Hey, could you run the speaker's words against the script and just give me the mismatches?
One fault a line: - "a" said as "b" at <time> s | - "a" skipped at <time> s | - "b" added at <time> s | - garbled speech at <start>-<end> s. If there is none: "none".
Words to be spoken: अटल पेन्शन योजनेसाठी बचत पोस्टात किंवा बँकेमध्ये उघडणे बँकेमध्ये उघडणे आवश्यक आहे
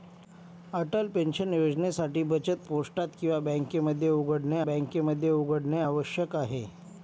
none